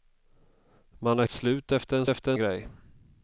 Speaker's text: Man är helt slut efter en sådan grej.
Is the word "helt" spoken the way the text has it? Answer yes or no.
no